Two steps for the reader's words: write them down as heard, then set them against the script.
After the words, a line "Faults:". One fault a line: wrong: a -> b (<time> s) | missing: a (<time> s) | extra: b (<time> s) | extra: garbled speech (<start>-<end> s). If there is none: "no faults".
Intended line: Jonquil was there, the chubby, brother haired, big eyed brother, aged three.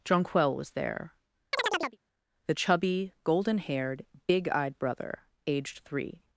Jonquil was there, the chubby, golden haired, big eyed brother, aged three.
Faults:
wrong: brother -> golden (3.2 s)